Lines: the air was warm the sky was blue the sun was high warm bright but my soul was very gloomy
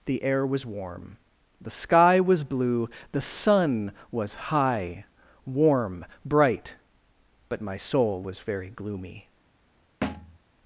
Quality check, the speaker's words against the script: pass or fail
pass